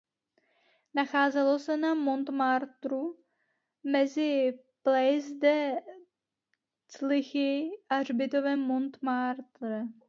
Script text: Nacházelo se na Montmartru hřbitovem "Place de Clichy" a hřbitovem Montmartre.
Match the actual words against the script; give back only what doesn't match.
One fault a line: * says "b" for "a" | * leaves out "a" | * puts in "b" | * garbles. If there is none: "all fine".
* says "mezi" for "hřbitovem"